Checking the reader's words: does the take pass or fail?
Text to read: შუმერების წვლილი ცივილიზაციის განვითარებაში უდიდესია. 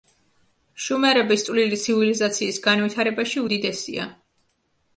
pass